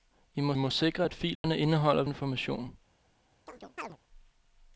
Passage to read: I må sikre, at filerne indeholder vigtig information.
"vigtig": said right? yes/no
no